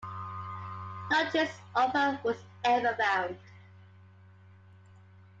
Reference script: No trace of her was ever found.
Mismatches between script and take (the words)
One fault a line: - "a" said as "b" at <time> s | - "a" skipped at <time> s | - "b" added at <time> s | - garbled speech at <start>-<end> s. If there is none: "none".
none